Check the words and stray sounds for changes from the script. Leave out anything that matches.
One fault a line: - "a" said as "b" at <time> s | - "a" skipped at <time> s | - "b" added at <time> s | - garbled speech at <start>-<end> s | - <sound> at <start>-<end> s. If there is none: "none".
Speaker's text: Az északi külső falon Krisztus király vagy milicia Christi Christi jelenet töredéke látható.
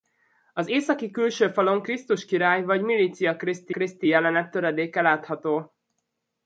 none